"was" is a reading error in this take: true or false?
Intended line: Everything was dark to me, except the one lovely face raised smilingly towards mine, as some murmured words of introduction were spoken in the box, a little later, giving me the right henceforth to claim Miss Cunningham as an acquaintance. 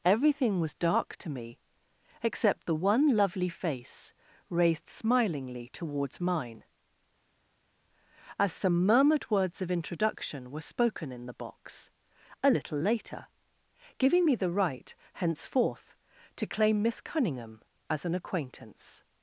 false